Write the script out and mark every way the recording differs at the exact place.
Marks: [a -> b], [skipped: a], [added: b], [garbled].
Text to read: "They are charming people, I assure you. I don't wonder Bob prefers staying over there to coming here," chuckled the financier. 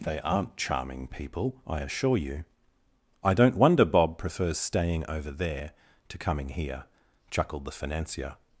"They [are -> aren't] charming people, I assure you. I don't wonder Bob prefers staying over there to coming here," chuckled the financier.